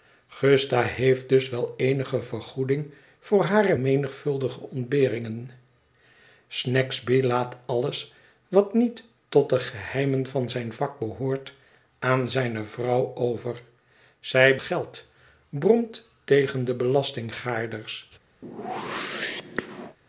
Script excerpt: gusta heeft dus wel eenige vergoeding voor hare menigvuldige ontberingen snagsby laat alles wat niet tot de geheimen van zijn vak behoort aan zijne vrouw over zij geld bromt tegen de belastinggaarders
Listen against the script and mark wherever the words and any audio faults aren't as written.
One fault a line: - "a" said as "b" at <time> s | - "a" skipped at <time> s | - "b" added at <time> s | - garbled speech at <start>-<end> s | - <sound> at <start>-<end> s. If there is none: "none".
- whoosh at 18.4-20.0 s